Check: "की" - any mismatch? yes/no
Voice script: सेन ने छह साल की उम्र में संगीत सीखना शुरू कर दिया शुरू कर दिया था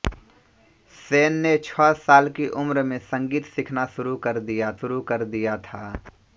no